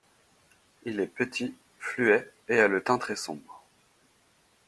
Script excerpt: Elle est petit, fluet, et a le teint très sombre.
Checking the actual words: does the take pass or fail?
fail